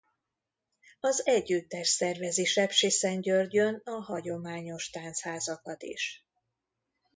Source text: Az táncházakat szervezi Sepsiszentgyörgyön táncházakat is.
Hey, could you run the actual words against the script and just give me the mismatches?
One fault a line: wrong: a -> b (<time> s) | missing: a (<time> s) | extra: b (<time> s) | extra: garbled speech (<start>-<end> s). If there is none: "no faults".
wrong: táncházakat -> együttes (1.3 s)
extra: a hagyományos (3.9 s)